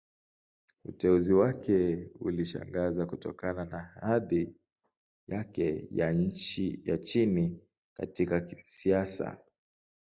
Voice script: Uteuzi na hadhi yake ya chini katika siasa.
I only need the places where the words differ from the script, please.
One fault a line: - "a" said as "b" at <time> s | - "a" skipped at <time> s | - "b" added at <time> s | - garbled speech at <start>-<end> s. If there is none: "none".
- "wake ulishangaza kutokana" added at 1.3 s